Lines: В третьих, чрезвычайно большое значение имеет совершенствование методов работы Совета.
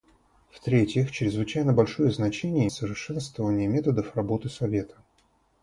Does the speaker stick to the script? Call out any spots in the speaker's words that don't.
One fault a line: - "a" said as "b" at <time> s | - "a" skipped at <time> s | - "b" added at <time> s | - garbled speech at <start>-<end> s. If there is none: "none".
- "имеет" skipped at 2.7 s